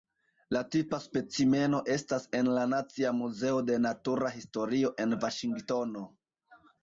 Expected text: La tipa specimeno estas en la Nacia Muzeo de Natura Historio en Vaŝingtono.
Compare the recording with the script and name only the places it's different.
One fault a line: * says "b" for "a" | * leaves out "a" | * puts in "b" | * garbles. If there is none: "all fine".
all fine